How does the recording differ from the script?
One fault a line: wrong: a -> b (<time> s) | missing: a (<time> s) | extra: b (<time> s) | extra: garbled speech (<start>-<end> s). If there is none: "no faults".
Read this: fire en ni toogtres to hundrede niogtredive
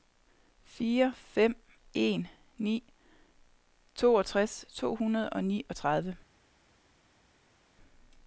extra: fem (1.1 s)
extra: og (5.3 s)